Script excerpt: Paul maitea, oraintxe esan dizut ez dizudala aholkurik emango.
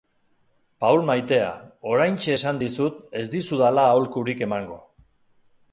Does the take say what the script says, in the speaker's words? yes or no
yes